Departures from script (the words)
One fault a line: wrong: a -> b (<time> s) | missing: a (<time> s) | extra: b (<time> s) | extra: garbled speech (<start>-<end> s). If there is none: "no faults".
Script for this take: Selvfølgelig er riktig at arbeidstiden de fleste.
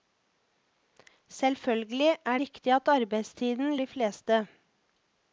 no faults